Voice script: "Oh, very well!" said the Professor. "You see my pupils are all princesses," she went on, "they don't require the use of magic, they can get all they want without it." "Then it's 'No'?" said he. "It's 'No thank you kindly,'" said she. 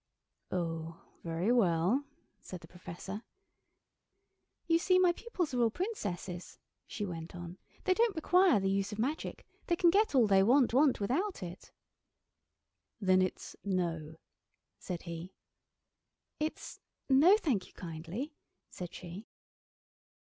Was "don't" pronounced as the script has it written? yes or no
yes